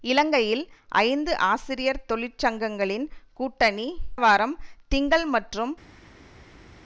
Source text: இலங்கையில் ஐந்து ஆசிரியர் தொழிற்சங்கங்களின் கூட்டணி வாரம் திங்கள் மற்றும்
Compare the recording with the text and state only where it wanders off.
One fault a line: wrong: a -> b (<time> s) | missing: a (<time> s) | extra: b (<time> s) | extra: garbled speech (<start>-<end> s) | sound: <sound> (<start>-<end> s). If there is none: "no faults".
no faults